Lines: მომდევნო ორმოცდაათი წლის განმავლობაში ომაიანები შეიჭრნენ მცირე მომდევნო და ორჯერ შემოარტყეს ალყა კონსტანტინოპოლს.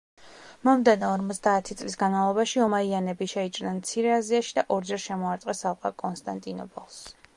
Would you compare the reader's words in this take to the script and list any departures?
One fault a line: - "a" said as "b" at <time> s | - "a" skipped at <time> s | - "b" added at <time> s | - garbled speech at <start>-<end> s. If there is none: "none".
- "მომდევნო" said as "აზიაში" at 4.2 s